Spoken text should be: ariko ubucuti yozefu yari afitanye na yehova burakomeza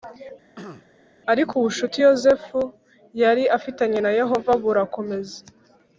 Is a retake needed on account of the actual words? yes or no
no